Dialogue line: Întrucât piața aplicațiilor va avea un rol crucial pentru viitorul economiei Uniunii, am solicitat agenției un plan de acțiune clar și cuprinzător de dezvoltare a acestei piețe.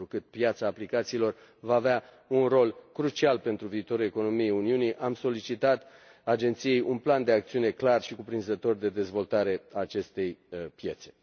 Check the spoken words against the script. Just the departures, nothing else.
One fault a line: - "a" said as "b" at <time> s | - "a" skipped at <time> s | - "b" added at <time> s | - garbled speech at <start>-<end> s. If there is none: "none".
none